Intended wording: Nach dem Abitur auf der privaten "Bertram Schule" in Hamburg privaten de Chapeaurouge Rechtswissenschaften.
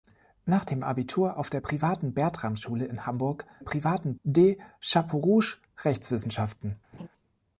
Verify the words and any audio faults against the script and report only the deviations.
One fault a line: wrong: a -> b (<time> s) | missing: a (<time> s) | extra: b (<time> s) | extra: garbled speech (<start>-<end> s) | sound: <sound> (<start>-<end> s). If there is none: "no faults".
sound: laugh (6.9-7.1 s)